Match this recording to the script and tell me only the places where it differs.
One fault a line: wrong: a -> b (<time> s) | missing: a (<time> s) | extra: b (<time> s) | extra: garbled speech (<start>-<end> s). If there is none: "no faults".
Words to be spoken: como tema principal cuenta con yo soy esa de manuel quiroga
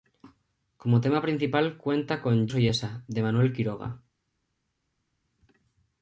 missing: yo (2.5 s)